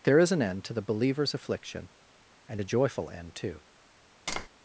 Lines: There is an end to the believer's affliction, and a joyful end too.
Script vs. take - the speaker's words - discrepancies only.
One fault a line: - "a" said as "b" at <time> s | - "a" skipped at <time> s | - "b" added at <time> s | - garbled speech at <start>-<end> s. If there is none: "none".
none